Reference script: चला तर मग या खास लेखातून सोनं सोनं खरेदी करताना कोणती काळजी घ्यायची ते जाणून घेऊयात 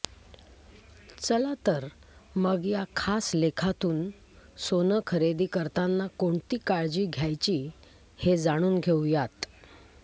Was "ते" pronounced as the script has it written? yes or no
no